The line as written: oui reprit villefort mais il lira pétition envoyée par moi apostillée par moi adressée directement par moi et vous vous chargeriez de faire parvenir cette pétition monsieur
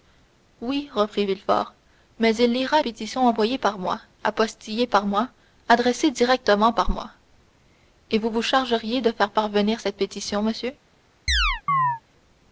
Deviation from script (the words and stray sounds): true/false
true